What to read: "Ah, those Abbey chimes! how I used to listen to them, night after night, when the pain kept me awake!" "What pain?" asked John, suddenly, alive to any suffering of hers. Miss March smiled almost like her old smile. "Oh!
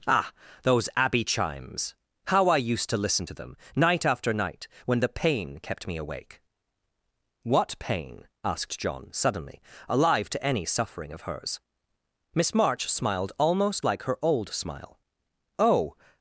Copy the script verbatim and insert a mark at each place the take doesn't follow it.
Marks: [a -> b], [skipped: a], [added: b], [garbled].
"Ah, those Abbey chimes! how I used to listen to them, night after night, when the pain kept me awake!" "What pain?" asked John, suddenly, alive to any suffering of hers. Miss March smiled almost like her old smile. "Oh!